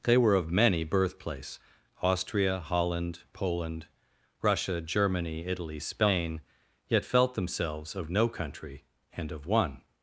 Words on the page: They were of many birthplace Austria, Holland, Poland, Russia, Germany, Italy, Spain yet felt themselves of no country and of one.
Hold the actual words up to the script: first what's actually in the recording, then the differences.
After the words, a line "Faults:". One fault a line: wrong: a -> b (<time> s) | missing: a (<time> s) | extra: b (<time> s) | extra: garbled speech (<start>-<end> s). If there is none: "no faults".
They were of many birthplace Austria, Holland, Poland, Russia, Germany, Italy, Spain yet felt themselves of no country and of one.
Faults:
no faults